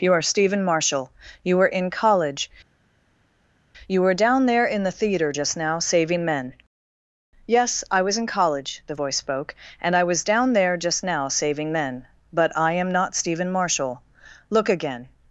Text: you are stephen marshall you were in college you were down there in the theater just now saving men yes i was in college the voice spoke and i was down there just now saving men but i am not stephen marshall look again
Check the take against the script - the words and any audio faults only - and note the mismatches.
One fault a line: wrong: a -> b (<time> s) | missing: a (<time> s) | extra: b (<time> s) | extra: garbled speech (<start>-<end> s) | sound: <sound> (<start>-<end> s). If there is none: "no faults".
no faults